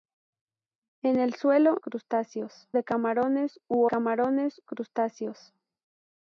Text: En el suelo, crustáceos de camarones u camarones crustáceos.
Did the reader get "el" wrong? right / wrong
right